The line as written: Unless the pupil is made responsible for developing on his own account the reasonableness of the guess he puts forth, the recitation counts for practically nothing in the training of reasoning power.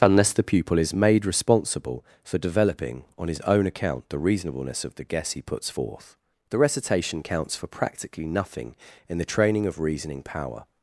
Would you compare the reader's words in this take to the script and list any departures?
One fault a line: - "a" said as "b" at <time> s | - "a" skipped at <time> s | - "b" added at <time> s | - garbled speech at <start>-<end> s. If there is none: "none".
none